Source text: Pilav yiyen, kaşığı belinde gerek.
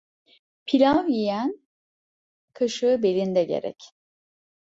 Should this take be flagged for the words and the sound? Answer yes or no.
no